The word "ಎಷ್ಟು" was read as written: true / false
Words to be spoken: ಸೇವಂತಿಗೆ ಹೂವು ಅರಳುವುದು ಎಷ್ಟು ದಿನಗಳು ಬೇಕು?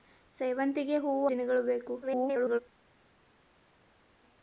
false